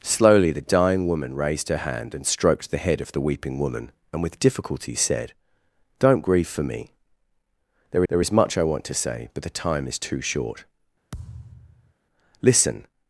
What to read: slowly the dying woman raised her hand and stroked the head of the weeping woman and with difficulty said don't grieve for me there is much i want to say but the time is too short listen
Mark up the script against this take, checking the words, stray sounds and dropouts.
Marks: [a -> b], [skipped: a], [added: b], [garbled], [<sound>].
slowly the dying woman raised her hand and stroked the head of the weeping woman and with difficulty said don't grieve for me there [added: there] is much i want to say but the time is too short [thud] listen